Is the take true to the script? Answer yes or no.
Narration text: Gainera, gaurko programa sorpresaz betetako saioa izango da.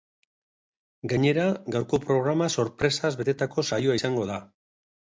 yes